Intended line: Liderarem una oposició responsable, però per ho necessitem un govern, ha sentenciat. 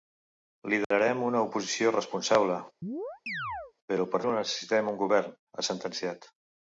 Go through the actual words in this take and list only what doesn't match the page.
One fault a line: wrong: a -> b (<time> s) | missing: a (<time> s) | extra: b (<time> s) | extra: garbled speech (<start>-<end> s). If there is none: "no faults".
no faults